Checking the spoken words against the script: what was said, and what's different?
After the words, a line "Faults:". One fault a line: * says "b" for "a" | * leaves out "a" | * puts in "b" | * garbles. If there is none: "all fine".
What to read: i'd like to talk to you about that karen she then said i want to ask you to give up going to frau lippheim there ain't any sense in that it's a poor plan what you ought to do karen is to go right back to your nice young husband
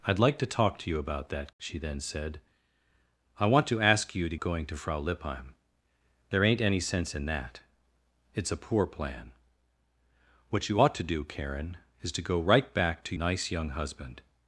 i'd like to talk to you about that she then said i want to ask you to going to frau lippheim there ain't any sense in that it's a poor plan what you ought to do karen is to go right back to nice young husband
Faults:
* leaves out "karen"
* leaves out "give up"
* leaves out "your"